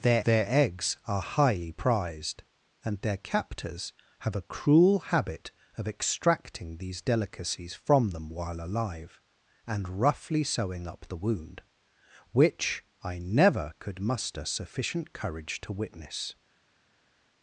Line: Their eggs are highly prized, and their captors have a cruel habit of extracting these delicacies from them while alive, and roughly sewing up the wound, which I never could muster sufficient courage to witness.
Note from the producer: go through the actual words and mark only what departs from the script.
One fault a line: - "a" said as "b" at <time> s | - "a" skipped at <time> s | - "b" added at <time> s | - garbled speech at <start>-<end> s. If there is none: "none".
- "their" added at 0.2 s